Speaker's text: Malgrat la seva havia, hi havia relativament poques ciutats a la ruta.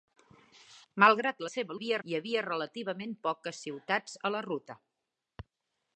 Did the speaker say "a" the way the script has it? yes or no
yes